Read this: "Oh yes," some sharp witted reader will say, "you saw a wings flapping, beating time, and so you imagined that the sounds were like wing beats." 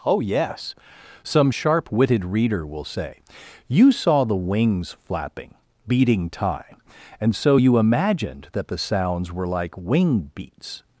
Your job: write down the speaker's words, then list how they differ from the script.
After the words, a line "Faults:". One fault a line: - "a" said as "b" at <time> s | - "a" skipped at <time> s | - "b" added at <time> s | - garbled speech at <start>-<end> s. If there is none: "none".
"Oh yes," some sharp witted reader will say, "you saw the wings flapping, beating time, and so you imagined that the sounds were like wing beats."
Faults:
- "a" said as "the" at 4.2 s